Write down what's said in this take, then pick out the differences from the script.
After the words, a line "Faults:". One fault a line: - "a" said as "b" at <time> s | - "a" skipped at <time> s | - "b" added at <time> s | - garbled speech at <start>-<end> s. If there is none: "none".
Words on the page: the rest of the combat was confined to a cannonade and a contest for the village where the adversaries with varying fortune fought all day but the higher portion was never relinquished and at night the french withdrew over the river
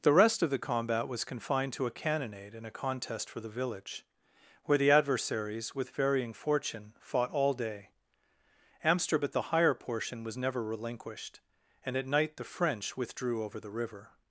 the rest of the combat was confined to a cannonade and a contest for the village where the adversaries with varying fortune fought all day amsterdam at the higher portion was never relinquished and at night the french withdrew over the river
Faults:
- "but" said as "amsterdam at" at 8.8 s